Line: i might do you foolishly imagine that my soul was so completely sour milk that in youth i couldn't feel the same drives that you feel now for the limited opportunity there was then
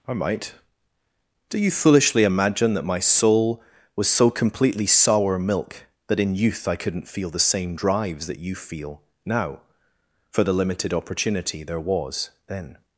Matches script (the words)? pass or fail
pass